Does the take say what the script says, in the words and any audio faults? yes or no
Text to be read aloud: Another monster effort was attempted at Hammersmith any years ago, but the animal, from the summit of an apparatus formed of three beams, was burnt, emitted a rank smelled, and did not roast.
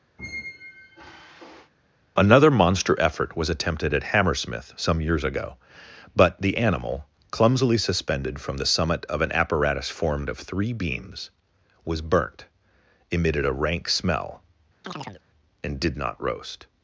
no